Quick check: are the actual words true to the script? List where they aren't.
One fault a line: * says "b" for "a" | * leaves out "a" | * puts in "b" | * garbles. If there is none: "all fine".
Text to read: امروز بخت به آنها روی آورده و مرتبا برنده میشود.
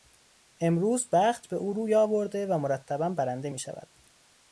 * says "او" for "آنها"